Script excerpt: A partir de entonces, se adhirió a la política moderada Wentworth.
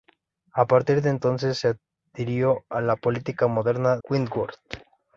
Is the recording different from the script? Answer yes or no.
no